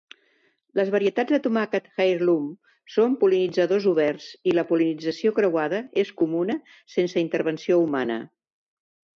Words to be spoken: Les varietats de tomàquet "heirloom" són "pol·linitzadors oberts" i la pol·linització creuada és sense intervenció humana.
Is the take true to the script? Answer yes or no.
no